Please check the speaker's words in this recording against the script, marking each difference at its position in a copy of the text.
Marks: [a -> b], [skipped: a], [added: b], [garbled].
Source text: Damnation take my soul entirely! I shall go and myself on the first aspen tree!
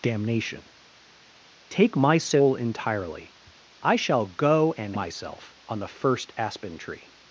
Damnation take my soul entirely! I shall go and myself on the first aspen tree!